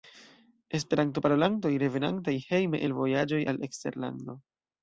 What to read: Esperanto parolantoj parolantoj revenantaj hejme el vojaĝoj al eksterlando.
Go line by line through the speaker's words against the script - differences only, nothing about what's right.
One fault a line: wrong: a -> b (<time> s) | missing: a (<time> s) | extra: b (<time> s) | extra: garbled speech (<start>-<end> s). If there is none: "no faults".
missing: parolantoj (1.7 s)